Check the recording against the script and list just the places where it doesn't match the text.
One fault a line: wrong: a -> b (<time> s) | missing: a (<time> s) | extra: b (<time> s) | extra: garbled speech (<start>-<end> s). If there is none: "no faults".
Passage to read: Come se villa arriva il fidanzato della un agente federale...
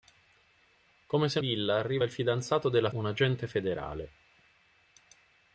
no faults